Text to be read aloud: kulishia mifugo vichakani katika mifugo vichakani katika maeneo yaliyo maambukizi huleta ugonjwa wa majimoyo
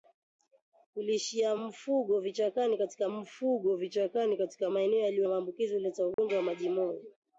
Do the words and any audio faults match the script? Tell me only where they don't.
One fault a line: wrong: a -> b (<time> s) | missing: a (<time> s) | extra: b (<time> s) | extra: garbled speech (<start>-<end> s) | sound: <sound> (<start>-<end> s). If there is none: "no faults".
sound: dropout (6.1-6.2 s)